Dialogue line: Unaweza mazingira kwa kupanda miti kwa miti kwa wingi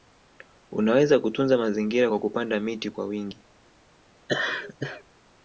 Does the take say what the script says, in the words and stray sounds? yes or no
no